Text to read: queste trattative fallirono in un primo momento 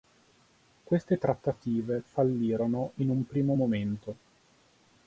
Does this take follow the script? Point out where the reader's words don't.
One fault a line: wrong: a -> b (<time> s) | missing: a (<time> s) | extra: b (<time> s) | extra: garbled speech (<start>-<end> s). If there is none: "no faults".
no faults